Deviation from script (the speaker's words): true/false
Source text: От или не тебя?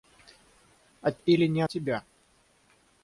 false